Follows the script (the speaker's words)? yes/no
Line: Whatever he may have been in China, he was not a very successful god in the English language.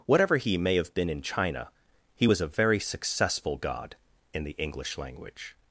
no